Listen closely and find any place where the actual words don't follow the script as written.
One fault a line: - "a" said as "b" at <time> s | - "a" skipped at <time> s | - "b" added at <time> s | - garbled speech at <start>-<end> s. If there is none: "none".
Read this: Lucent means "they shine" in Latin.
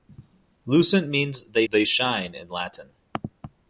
- "they" added at 1.7 s